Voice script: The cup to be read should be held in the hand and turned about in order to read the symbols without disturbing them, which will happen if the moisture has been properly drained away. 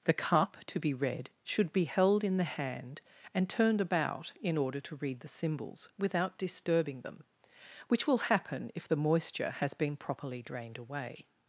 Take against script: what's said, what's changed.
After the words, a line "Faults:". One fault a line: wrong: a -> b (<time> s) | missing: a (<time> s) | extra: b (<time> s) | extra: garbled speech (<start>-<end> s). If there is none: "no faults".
The cup to be read should be held in the hand and turned about in order to read the symbols without disturbing them, which will happen if the moisture has been properly drained away.
Faults:
no faults